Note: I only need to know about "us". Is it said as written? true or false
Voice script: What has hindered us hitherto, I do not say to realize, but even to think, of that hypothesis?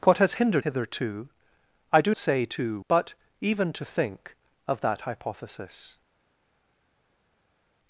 false